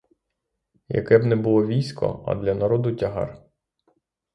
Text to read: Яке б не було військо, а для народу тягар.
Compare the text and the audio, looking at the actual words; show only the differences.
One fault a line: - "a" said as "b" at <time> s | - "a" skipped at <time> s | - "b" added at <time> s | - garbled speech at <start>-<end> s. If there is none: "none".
none